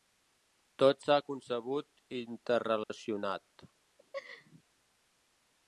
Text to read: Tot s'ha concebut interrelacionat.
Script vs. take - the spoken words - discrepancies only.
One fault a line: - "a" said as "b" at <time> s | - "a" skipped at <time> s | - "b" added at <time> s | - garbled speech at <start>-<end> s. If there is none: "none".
none